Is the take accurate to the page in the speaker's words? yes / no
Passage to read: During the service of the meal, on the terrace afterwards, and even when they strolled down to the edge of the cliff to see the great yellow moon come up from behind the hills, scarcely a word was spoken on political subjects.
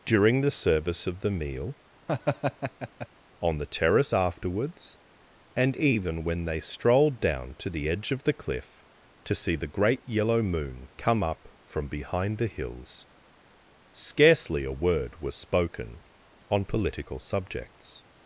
yes